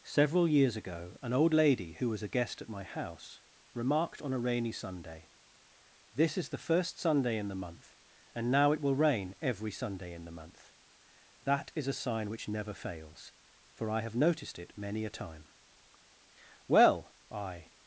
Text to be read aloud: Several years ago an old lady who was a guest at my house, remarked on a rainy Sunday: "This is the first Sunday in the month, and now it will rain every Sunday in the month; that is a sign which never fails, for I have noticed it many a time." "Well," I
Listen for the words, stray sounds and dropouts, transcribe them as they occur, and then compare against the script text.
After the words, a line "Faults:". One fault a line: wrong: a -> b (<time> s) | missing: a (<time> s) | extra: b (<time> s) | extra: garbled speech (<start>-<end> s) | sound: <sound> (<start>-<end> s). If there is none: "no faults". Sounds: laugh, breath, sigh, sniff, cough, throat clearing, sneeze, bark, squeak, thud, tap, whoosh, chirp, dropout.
Several years ago an old lady who was a guest at my house, remarked on a rainy Sunday: "This is the first Sunday in the month, and now it will rain every Sunday in the month; that is a sign which never fails, for I have noticed it many a time." "Well," I
Faults:
no faults